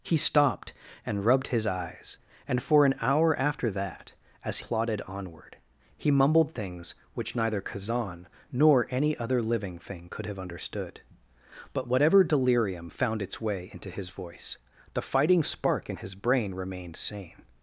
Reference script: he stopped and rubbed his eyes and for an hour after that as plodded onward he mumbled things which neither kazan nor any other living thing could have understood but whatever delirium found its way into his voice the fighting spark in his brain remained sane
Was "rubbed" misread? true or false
false